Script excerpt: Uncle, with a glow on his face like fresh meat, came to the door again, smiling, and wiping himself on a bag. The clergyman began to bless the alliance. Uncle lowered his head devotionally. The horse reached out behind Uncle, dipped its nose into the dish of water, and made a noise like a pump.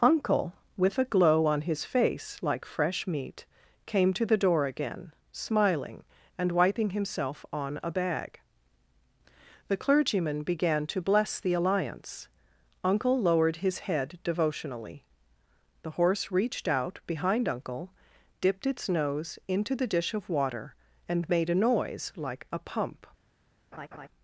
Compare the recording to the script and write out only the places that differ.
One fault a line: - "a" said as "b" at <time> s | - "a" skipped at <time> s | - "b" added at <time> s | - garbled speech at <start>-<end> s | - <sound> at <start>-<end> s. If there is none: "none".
- laugh at 23.7-24.1 s